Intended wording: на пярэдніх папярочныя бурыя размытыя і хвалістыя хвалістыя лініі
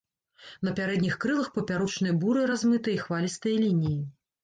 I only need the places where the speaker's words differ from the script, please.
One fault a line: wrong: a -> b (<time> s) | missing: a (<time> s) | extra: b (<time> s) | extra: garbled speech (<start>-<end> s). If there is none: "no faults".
extra: крылах (1.3 s)
missing: хвалістыя (3.5 s)